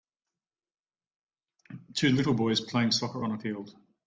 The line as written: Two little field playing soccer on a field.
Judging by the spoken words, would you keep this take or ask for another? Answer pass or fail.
fail